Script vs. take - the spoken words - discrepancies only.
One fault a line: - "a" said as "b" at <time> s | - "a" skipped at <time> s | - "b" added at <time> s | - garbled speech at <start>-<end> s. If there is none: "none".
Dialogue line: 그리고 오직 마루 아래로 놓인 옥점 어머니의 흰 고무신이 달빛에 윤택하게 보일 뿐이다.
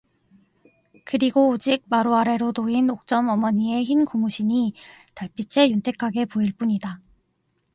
none